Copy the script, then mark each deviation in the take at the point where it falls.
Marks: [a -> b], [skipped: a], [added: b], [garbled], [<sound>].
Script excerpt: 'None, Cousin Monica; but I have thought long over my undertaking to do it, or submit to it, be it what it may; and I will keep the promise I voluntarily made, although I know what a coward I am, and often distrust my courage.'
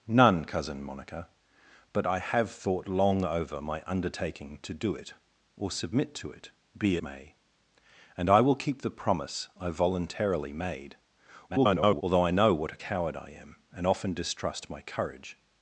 'None, Cousin Monica; but I have thought long over my undertaking to do it, or submit to it, be [skipped: it what it] may; and I will keep the promise I voluntarily made, [garbled] although I know what a coward I am, and often distrust my courage.'